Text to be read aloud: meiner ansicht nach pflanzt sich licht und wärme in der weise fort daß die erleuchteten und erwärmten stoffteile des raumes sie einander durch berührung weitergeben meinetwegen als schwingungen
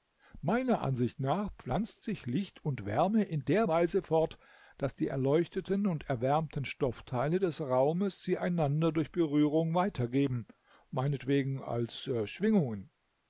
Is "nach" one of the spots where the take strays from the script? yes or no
no